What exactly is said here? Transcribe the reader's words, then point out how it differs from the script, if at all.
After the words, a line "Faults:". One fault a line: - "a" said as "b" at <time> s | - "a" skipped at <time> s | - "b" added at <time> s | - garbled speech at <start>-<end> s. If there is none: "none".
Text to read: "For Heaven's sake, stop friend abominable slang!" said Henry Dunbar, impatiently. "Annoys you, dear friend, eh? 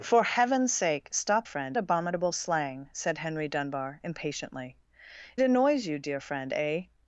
"For Heaven's sake, stop friend abominable slang!" said Henry Dunbar, impatiently. "Annoys you, dear friend, eh?
Faults:
none